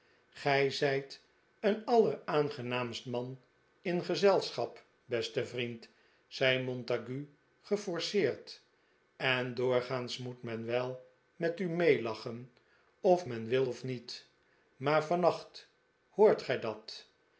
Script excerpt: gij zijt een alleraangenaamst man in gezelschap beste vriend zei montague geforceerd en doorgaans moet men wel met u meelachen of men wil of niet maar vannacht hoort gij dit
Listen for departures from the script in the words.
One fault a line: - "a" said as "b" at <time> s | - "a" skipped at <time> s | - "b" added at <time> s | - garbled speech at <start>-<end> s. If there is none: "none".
- "dit" said as "dat" at 16.6 s